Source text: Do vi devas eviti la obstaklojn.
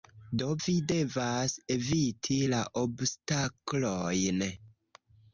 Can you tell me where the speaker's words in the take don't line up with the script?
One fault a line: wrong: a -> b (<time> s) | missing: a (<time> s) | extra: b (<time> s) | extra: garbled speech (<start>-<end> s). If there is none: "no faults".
no faults